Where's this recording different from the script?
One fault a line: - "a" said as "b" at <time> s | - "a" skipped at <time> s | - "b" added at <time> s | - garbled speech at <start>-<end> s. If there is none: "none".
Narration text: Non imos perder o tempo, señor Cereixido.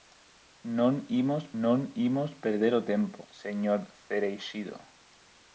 - "non imos" added at 1.6 s